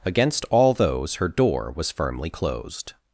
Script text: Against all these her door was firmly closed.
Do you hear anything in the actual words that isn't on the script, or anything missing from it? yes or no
yes